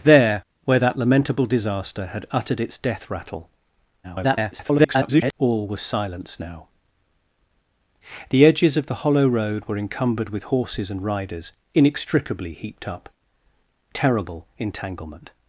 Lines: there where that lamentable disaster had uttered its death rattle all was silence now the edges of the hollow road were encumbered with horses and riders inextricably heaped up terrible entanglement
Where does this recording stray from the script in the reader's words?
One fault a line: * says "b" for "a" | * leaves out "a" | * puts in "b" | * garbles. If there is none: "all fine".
* garbles